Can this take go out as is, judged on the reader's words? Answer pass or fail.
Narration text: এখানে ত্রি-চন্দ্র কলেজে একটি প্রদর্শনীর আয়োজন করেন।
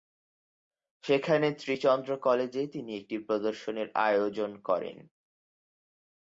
fail